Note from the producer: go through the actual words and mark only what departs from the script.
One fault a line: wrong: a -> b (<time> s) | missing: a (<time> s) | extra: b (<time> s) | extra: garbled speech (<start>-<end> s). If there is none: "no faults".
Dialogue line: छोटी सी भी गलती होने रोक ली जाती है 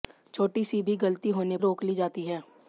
no faults